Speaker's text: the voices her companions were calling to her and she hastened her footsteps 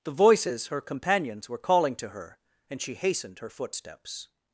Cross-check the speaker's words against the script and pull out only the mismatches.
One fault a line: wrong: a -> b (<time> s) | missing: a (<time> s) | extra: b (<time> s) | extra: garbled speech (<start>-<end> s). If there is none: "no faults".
no faults